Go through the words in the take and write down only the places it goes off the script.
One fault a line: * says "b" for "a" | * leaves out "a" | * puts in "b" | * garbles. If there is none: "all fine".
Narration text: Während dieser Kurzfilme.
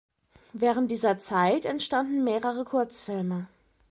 * puts in "Zeit entstanden mehrere"